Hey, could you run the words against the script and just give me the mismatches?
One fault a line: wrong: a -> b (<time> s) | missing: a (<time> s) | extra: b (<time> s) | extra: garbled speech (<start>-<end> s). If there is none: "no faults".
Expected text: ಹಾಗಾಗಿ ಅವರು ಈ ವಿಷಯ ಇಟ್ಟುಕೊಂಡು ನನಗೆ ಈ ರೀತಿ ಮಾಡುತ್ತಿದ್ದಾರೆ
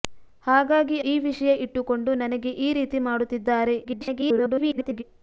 missing: ಅವರು (1.0 s)
extra: garbled speech (3.8-5.0 s)